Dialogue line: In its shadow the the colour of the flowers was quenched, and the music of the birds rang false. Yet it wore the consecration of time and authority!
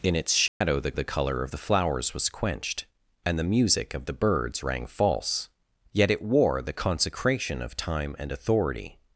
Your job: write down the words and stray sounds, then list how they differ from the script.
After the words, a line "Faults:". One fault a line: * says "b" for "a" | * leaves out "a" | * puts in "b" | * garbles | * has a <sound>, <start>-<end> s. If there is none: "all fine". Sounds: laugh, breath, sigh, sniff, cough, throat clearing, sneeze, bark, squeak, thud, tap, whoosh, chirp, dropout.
In its shadow the the colour of the flowers was quenched, and the music of the birds rang false. Yet it wore the consecration of time and authority!
Faults:
* has a dropout, 0.5-0.6 s